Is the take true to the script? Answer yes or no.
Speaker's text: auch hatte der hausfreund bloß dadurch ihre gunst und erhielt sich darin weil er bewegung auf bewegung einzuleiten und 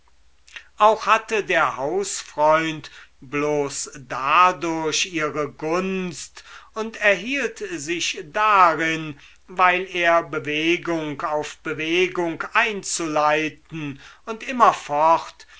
yes